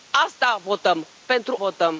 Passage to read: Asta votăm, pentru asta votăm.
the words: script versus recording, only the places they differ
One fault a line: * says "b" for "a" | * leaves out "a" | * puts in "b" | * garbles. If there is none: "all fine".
* leaves out "asta"